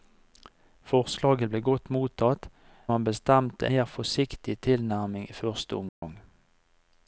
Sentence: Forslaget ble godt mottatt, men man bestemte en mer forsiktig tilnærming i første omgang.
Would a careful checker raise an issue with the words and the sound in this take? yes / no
yes